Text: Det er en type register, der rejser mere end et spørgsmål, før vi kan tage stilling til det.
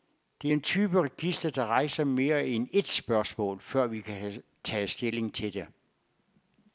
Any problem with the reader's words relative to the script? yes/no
no